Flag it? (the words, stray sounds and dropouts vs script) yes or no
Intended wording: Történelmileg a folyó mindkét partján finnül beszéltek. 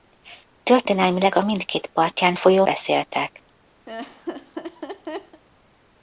yes